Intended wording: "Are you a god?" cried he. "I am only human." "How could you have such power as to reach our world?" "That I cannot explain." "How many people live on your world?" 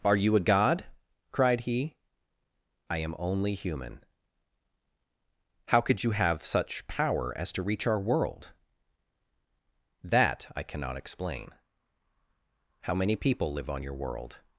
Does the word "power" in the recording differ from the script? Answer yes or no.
no